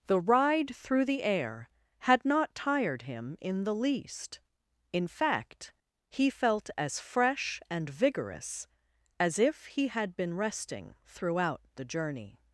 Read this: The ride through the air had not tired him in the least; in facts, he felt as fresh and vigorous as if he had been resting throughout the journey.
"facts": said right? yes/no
no